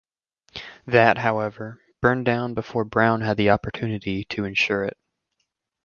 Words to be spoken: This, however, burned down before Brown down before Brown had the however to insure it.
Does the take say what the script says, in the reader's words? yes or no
no